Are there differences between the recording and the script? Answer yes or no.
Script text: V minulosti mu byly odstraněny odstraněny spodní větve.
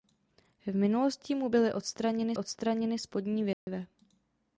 no